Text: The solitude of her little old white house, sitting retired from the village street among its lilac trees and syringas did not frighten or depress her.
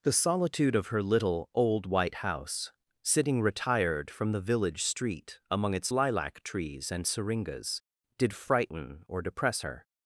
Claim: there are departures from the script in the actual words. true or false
true